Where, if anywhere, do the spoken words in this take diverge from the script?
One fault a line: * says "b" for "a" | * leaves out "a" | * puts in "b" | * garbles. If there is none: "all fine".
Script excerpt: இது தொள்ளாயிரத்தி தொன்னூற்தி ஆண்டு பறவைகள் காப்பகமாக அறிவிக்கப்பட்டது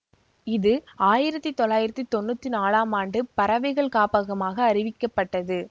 * puts in "ஆயிரத்தி"
* puts in "நாலாம்"